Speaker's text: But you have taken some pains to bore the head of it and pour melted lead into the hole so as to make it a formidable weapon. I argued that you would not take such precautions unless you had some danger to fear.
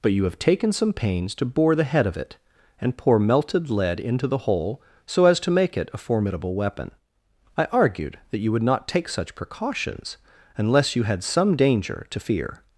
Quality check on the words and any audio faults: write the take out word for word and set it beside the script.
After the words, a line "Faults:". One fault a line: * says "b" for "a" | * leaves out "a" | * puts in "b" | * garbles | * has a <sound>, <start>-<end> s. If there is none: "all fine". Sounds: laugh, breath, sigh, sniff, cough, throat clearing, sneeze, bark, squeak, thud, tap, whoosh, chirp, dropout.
But you have taken some pains to bore the head of it and pour melted lead into the hole so as to make it a formidable weapon. I argued that you would not take such precautions unless you had some danger to fear.
Faults:
all fine